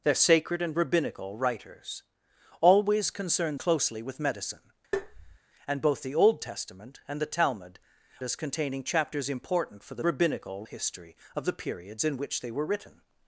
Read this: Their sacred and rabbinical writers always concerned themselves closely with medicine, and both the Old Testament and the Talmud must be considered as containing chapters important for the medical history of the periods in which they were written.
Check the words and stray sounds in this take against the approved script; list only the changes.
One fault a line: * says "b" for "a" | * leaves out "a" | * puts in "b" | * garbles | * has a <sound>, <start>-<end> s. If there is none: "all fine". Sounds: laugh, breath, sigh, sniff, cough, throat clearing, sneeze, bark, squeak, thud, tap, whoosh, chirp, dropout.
* leaves out "themselves"
* has a tap, 4.9-5.4 s
* leaves out "must be considered"
* says "rabbinical" for "medical"